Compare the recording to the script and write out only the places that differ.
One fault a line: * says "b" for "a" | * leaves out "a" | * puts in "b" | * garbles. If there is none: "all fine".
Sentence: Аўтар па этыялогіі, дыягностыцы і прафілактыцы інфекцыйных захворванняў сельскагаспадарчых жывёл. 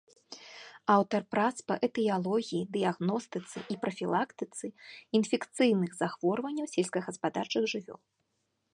* puts in "прац"